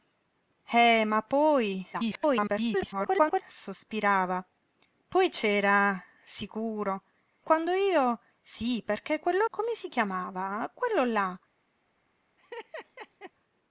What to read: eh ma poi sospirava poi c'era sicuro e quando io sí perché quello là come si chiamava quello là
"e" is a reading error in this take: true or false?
true